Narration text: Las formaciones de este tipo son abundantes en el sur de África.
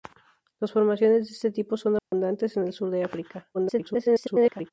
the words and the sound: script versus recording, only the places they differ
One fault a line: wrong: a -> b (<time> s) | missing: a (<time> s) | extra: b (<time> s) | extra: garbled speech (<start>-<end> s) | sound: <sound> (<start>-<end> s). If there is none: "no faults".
sound: dropout (2.0-2.1 s)
extra: garbled speech (3.5-4.7 s)